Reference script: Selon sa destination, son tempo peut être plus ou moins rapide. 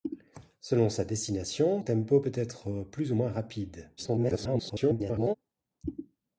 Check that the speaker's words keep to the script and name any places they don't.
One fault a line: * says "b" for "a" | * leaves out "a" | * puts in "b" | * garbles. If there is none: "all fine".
* leaves out "son"
* garbles